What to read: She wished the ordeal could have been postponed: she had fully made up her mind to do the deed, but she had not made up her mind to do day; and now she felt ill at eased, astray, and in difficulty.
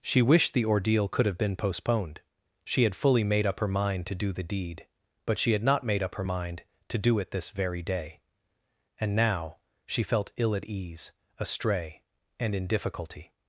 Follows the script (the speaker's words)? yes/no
no